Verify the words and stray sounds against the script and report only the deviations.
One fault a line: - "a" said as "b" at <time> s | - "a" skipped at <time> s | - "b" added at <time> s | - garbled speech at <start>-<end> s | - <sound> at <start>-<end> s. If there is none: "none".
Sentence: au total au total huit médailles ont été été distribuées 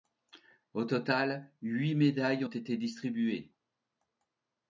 - "au total" skipped at 1.5 s
- "été" skipped at 2.8 s